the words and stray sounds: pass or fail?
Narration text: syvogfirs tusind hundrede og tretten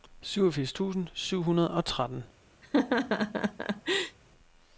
fail